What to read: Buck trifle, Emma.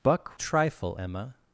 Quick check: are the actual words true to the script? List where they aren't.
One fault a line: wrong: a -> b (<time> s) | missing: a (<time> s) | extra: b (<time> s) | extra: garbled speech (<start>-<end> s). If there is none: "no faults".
no faults